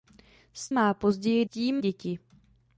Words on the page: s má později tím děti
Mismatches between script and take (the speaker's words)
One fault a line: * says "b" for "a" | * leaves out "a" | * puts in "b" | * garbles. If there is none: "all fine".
all fine